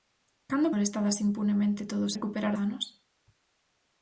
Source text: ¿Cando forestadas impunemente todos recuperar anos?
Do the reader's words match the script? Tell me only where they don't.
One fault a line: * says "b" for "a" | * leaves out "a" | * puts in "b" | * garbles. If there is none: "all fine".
all fine